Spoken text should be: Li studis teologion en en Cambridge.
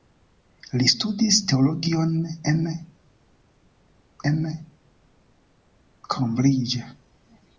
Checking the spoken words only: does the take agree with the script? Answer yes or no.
yes